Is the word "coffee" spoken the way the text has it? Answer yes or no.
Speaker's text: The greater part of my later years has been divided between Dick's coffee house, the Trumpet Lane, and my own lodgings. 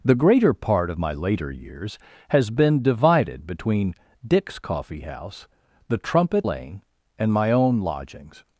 yes